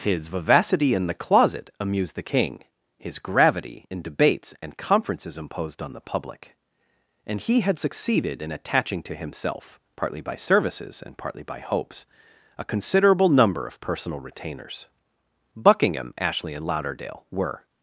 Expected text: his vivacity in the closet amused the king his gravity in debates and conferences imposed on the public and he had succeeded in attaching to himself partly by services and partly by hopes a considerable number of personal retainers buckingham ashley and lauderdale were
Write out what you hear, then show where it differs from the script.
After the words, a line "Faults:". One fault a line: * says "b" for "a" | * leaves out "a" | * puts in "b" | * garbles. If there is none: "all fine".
his vivacity in the closet amused the king his gravity in debates and conferences imposed on the public and he had succeeded in attaching to himself partly by services and partly by hopes a considerable number of personal retainers buckingham ashley and lauderdale were
Faults:
all fine